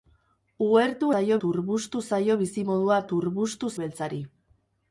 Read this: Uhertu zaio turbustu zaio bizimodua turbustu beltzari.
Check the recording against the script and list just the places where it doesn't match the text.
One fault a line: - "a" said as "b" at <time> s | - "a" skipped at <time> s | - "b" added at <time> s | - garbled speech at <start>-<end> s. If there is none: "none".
none